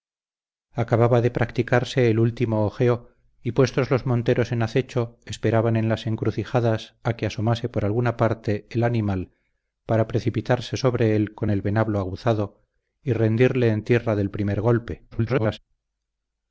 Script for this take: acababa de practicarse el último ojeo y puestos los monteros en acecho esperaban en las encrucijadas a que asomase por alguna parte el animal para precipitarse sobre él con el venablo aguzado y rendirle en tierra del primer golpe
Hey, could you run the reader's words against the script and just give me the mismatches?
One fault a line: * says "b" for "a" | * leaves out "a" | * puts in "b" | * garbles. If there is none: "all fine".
* garbles